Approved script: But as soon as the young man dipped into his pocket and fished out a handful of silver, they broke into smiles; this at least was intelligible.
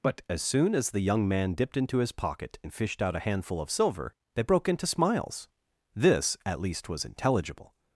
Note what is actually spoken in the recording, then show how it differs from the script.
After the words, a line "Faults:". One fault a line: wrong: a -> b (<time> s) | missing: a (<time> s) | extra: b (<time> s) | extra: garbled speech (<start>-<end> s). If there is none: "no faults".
But as soon as the young man dipped into his pocket and fished out a handful of silver, they broke into smiles; this at least was intelligible.
Faults:
no faults